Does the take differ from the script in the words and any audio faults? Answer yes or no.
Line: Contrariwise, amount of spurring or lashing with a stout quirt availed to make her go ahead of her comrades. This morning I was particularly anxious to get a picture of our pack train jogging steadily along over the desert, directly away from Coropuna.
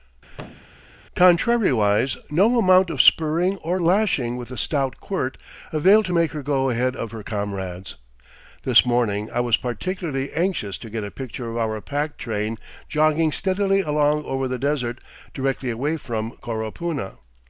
yes